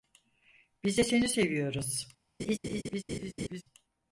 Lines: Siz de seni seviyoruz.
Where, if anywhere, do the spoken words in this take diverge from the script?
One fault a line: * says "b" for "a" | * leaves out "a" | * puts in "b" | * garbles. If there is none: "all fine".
* says "Biz" for "Siz"